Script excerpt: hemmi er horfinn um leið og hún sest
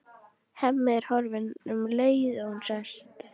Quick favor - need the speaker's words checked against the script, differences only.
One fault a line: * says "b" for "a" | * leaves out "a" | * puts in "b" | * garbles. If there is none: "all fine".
all fine